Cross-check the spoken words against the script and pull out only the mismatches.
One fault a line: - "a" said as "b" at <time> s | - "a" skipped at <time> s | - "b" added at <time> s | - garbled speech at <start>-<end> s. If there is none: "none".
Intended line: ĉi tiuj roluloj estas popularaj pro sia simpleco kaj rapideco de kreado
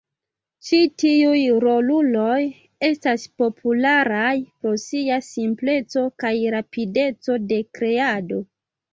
none